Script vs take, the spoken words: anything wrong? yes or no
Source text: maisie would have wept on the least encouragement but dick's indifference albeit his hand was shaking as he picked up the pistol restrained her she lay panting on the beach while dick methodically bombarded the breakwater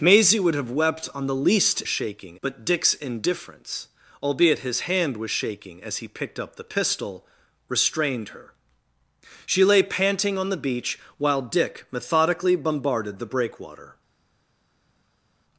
yes